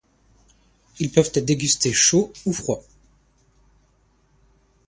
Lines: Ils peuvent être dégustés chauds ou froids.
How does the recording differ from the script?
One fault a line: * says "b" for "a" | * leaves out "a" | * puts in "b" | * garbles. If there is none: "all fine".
all fine